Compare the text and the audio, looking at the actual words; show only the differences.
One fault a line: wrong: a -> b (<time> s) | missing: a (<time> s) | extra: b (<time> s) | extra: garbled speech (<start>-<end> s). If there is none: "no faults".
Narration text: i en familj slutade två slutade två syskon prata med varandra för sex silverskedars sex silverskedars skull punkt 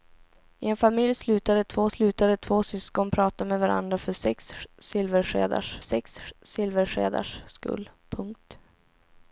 no faults